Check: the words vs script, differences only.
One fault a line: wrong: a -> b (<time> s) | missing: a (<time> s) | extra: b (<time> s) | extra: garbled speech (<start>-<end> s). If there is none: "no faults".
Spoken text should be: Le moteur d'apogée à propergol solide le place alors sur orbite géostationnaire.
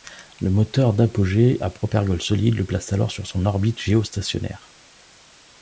extra: son (3.3 s)